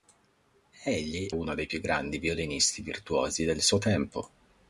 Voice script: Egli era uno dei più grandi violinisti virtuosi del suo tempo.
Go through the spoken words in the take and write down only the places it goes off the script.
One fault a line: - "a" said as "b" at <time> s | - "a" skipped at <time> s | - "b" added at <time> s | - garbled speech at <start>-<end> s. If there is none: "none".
- "era" skipped at 1.3 s